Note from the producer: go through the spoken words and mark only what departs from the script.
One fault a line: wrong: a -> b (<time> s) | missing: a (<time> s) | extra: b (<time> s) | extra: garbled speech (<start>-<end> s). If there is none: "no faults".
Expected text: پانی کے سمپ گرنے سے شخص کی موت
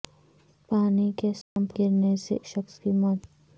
no faults